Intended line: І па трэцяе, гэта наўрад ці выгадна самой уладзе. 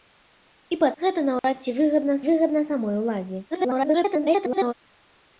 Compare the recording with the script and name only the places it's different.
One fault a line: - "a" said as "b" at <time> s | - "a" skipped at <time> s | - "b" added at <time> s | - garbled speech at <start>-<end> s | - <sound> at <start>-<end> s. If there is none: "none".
- "трэцяе" skipped at 0.9 s
- dropout at 1.4-1.4 s
- "выгадна" added at 2.3 s
- garbled speech at 3.5-4.7 s